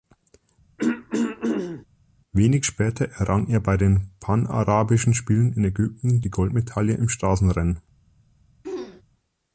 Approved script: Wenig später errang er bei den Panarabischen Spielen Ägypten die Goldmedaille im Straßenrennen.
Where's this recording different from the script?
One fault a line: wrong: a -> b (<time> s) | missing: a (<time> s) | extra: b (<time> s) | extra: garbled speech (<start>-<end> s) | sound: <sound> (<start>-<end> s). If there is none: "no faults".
sound: throat clearing (0.8-1.9 s)
extra: in (5.5 s)
sound: throat clearing (8.6-9.0 s)